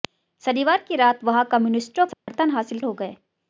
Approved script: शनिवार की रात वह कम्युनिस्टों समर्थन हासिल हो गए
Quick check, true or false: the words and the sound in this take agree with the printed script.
false